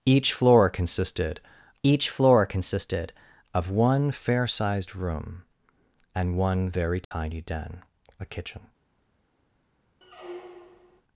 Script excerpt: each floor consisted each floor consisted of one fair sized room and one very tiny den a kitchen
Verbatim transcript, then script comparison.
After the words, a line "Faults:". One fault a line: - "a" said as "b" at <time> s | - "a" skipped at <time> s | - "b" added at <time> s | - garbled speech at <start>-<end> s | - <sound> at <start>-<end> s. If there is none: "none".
each floor consisted each floor consisted of one fair sized room and one very tiny den a kitchen
Faults:
- dropout at 7.0-7.1 s
- squeak at 10.0-11.0 s